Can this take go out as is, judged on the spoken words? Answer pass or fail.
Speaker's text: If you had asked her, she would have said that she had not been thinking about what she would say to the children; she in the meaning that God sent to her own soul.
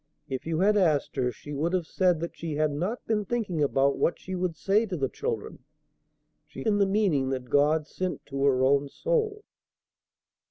pass